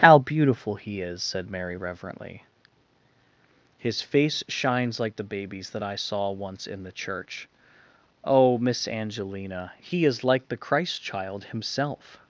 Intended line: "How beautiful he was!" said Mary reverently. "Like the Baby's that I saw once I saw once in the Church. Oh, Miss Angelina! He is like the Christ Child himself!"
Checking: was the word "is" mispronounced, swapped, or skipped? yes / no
no